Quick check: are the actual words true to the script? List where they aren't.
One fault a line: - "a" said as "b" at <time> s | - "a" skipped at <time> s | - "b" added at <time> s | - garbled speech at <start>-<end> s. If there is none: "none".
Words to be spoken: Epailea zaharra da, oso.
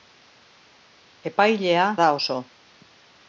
- "zaharra" skipped at 1.8 s